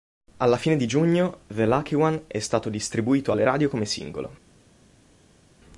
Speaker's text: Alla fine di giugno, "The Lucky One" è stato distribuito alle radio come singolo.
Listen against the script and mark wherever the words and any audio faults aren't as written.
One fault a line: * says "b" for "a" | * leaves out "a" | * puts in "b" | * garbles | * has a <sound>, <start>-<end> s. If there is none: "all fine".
all fine